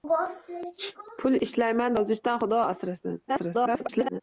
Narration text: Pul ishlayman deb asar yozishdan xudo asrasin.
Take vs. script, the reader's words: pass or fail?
fail